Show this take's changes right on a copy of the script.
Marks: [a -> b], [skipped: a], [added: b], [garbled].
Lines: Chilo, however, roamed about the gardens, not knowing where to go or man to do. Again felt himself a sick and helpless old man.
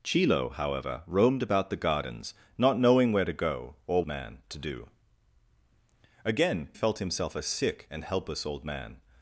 Chilo, however, roamed about the gardens, not knowing where to go or man to do. Again felt himself a sick and helpless old man.